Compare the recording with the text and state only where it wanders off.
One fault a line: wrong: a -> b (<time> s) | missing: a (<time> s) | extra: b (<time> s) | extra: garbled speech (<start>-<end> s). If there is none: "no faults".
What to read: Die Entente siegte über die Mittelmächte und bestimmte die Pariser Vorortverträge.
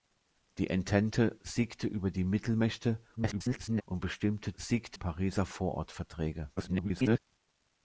extra: garbled speech (3.2-3.8 s)
wrong: die -> siegte (4.6 s)
extra: garbled speech (6.6-7.2 s)